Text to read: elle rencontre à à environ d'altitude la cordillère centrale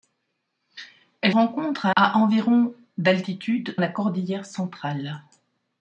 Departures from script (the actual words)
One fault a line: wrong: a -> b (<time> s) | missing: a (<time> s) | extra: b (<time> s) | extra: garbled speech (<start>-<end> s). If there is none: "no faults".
no faults